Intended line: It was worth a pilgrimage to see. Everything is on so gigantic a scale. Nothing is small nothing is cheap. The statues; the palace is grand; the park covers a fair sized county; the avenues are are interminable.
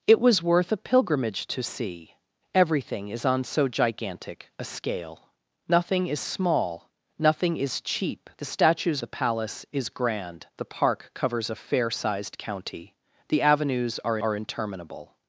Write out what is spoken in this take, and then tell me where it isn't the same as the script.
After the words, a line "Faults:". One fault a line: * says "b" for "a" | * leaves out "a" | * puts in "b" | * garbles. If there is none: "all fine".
It was worth a pilgrimage to see. Everything is on so gigantic a scale. Nothing is small nothing is cheap. The statues; the palace is grand; the park covers a fair sized county; the avenues are are interminable.
Faults:
all fine